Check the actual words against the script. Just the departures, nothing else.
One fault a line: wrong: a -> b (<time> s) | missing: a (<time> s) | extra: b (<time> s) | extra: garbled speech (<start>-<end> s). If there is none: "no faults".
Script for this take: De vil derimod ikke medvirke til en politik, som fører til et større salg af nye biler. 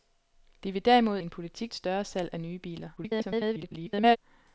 missing: ikke medvirke til (1.2 s)
missing: som fører til (1.7 s)
extra: garbled speech (3.0-4.2 s)